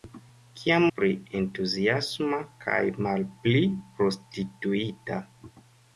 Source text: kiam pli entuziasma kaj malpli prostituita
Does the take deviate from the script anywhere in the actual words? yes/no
no